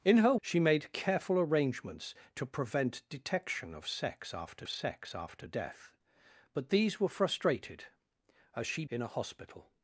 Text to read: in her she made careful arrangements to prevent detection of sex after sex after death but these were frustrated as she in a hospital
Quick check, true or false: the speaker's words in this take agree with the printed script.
true